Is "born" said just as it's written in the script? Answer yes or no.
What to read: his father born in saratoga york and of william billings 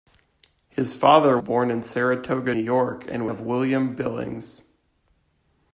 yes